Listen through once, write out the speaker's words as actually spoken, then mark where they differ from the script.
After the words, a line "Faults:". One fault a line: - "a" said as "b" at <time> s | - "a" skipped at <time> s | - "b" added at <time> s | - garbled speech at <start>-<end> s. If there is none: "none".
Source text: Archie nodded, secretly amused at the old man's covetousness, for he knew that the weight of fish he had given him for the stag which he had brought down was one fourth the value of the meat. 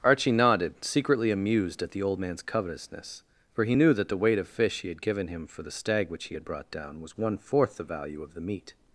Archie nodded, secretly amused at the old man's covetousness, for he knew that the weight of fish he had given him for the stag which he had brought down was one fourth the value of the meat.
Faults:
none